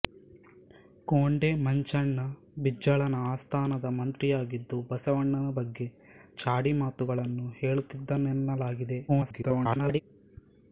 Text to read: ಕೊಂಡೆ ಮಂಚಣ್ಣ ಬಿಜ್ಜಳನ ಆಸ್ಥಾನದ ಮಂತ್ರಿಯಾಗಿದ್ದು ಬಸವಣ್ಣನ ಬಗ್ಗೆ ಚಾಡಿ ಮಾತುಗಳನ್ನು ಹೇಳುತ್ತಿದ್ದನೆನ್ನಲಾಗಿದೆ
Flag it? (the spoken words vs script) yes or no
yes